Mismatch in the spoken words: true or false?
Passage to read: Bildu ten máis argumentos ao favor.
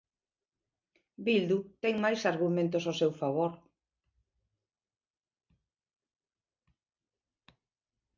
true